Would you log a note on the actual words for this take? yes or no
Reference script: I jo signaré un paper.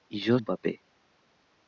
yes